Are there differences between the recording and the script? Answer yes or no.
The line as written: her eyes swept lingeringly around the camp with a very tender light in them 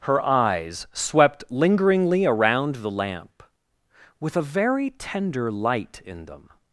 yes